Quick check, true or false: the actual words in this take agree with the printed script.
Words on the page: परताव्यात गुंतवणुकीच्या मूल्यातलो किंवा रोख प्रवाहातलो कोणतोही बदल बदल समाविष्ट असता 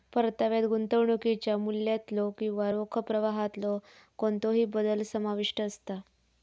false